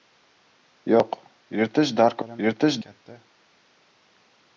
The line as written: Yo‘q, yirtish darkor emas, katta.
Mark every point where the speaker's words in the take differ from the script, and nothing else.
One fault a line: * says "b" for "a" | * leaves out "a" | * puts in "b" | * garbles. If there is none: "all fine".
* says "yirtish" for "emas"